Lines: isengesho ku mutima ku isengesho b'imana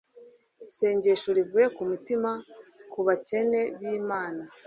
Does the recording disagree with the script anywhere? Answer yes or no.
yes